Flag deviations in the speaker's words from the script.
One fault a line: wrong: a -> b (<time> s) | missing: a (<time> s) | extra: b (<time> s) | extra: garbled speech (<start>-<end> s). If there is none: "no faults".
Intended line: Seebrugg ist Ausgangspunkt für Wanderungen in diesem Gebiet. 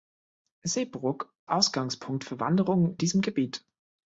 missing: ist (1.3 s)
missing: in (3.0 s)